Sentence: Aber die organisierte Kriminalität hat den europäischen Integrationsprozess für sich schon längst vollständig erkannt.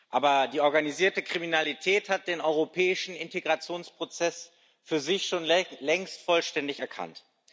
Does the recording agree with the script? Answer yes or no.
yes